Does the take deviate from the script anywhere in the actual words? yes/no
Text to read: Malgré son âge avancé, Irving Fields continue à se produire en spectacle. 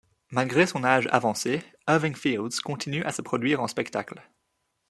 no